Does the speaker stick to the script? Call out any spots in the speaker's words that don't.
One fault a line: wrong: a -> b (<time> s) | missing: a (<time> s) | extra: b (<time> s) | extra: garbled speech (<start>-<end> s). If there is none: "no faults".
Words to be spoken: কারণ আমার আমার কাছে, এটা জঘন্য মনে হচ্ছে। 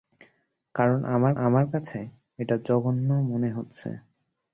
no faults